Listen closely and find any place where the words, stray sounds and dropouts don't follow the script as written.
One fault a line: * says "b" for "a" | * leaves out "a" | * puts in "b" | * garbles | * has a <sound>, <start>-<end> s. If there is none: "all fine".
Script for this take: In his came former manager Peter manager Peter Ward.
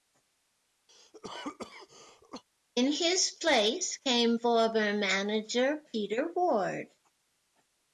* has a cough, 0.9-2.4 s
* puts in "place"
* leaves out "manager Peter"